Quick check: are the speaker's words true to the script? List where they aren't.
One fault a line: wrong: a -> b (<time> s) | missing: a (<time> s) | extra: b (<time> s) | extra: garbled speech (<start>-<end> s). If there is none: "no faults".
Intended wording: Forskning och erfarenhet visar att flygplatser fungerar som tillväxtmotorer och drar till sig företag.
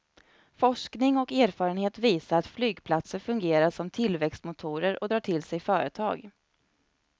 no faults